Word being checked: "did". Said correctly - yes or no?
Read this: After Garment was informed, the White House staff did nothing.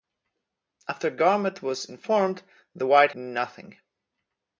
no